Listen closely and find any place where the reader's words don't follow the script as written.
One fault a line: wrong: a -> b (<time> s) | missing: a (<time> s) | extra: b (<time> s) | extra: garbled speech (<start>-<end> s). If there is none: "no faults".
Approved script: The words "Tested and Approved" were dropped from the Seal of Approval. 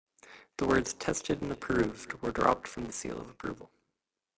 no faults